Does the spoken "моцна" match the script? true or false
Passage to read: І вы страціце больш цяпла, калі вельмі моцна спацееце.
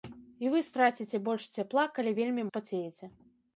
false